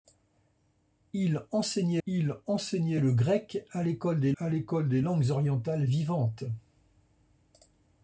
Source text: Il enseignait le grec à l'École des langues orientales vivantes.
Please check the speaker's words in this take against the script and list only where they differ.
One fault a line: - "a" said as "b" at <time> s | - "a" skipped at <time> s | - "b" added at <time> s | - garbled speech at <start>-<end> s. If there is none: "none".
- "il enseignait" added at 2.1 s
- "à l'École des" added at 4.4 s